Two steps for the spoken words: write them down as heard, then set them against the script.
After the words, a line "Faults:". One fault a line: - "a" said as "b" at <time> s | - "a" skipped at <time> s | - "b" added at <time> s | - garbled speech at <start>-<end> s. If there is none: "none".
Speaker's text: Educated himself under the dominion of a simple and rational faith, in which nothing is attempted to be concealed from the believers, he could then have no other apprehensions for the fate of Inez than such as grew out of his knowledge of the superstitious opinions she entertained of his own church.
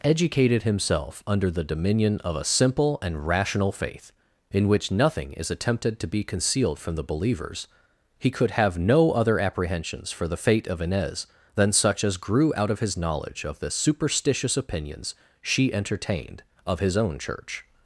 Educated himself under the dominion of a simple and rational faith, in which nothing is attempted to be concealed from the believers, he could have no other apprehensions for the fate of Inez than such as grew out of his knowledge of the superstitious opinions she entertained of his own church.
Faults:
- "then" skipped at 8.5 s